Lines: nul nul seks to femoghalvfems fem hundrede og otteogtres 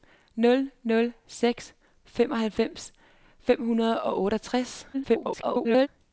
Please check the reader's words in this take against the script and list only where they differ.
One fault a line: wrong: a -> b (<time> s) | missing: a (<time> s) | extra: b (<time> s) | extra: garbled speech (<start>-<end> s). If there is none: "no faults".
missing: to (1.7 s)
extra: garbled speech (4.9-5.9 s)